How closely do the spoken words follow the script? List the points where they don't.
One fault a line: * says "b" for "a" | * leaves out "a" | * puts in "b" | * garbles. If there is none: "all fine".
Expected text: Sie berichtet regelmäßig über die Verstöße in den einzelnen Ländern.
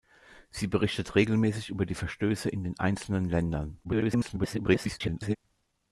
* garbles